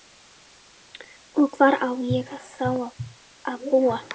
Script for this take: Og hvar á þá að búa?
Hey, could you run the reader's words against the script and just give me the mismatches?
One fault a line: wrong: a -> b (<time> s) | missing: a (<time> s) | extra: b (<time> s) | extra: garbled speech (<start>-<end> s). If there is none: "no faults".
extra: ég (2.1 s)